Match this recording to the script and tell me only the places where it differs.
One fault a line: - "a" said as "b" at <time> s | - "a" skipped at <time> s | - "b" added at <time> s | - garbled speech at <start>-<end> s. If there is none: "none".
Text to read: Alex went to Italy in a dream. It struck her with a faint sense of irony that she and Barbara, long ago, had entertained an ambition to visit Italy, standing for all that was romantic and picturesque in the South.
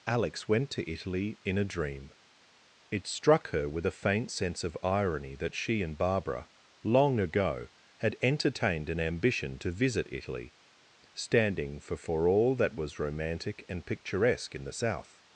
- "for" added at 12.0 s